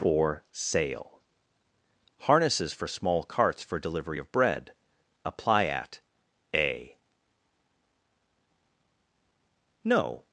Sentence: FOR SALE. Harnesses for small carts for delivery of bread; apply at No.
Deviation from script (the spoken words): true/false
true